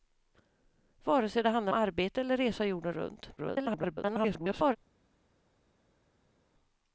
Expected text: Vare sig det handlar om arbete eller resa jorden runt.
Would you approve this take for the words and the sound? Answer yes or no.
no